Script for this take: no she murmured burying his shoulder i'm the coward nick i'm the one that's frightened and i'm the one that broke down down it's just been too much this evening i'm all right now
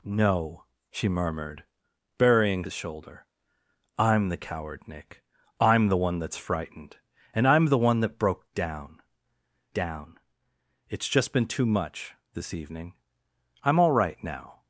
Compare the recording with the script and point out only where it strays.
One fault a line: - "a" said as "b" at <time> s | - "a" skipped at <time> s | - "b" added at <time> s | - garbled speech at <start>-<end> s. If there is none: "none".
none